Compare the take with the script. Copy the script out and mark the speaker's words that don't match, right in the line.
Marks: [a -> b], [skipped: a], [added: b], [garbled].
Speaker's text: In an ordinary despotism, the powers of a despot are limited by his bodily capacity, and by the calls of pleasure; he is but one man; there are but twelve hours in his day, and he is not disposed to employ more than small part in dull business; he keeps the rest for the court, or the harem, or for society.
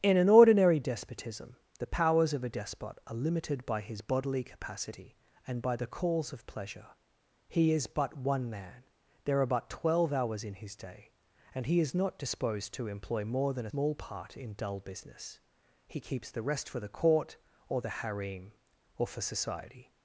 In an ordinary despotism, the powers of a despot are limited by his bodily capacity, and by the calls of pleasure; he is but one man; there are but twelve hours in his day, and he is not disposed to employ more than small part in dull business; he keeps the rest for the court, or the harem, or for society.